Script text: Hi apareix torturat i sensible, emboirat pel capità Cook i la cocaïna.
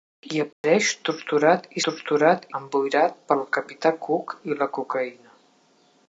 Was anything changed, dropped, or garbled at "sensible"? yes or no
yes